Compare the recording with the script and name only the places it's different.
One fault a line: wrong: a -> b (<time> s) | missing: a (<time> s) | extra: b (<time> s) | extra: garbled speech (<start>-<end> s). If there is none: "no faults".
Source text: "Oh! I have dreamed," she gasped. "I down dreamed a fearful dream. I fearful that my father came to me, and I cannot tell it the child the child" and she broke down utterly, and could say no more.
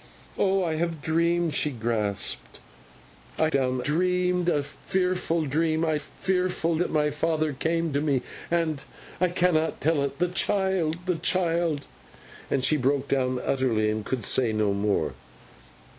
no faults